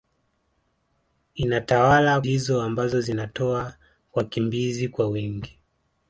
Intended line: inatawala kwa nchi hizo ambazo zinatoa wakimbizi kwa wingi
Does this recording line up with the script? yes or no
no